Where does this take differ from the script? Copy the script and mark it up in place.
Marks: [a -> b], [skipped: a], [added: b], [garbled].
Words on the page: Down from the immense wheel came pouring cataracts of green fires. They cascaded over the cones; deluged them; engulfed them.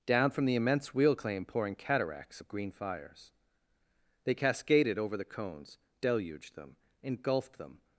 Down from the immense wheel [came -> claim] pouring cataracts of green fires. They cascaded over the cones; deluged them; engulfed them.